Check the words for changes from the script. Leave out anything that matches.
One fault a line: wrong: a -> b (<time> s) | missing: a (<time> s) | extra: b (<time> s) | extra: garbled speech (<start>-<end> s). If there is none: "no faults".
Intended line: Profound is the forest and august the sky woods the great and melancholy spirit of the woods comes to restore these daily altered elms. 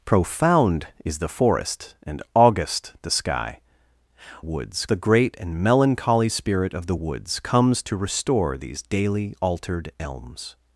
no faults